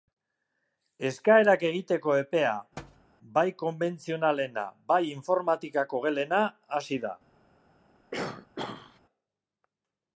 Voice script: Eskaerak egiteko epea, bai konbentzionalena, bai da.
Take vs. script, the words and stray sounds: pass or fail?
fail